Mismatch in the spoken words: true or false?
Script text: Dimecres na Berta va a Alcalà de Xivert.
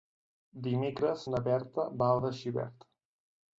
true